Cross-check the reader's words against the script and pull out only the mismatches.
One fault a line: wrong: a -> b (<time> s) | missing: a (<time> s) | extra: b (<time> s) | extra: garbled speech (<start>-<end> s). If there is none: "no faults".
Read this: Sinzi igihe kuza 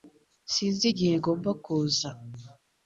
extra: ngomba (1.2 s)